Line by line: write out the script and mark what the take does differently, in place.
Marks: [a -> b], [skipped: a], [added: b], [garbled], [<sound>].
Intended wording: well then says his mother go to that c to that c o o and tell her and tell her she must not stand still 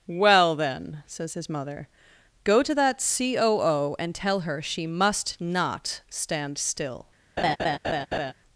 well then says his mother go to that c [skipped: to that c] o o and tell her [skipped: and tell her] she must not stand still [laugh]